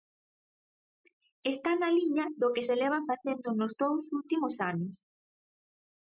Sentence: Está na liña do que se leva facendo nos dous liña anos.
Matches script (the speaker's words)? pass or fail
fail